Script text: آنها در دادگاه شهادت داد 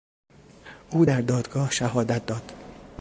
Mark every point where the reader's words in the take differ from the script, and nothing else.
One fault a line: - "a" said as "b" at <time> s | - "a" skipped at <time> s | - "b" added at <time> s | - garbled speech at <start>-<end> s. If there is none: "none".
- "آنها" said as "او" at 0.9 s